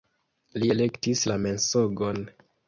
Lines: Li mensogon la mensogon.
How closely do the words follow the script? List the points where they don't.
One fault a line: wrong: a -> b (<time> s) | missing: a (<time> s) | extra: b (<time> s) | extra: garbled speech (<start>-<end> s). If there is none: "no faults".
wrong: mensogon -> elektis (0.8 s)